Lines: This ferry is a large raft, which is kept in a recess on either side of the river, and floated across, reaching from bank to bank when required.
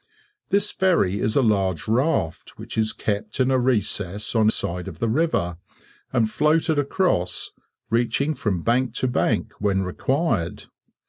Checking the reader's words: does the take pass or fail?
fail